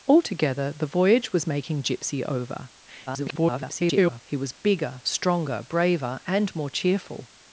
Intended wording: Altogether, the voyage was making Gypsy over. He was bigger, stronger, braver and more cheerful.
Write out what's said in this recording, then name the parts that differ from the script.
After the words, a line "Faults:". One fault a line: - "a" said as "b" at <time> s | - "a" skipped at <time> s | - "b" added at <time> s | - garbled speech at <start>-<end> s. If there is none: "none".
Altogether, the voyage was making Gypsy over. [garbled] He was bigger, stronger, braver and more cheerful.
Faults:
- garbled speech at 3.1-4.2 s